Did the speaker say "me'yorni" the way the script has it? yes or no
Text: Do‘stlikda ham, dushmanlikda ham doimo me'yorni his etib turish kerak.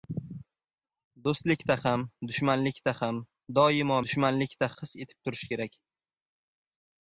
no